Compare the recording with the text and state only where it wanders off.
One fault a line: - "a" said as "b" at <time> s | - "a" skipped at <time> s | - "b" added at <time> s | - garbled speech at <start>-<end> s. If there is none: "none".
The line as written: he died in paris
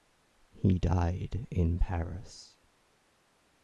none